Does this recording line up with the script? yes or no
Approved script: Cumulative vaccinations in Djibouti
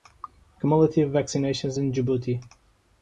yes